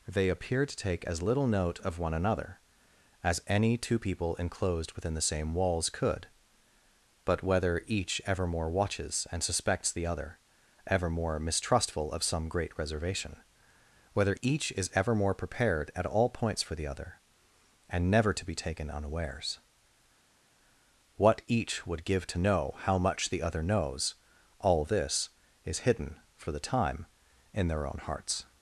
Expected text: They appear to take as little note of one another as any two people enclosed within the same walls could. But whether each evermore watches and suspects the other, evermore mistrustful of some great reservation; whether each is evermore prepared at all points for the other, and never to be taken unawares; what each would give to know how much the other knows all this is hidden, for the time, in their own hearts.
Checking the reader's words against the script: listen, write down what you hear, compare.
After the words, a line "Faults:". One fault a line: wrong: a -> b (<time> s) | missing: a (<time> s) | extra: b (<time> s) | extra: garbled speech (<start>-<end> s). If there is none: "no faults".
They appear to take as little note of one another as any two people enclosed within the same walls could. But whether each evermore watches and suspects the other, evermore mistrustful of some great reservation; whether each is evermore prepared at all points for the other, and never to be taken unawares; what each would give to know how much the other knows all this is hidden, for the time, in their own hearts.
Faults:
no faults